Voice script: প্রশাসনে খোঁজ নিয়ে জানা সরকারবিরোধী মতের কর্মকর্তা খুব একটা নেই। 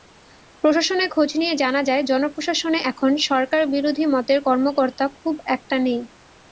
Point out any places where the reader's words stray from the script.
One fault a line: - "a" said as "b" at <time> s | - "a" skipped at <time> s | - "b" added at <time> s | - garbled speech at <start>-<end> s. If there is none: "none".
- "যায় জনপ্রশাসনে এখন" added at 1.8 s